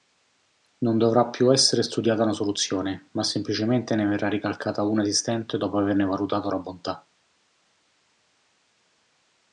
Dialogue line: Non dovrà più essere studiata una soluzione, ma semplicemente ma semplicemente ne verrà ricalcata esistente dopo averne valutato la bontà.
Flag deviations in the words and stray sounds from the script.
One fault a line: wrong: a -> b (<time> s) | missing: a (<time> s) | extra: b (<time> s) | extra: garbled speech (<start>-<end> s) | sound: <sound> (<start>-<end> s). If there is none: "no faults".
missing: ma semplicemente (3.9 s)
extra: una (4.8 s)